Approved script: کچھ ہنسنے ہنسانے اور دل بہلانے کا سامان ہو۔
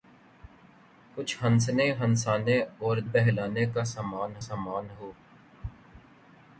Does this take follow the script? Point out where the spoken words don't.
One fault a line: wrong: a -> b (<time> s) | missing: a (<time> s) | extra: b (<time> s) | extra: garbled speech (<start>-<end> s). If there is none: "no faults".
missing: دل (3.0 s)
extra: سامان (4.4 s)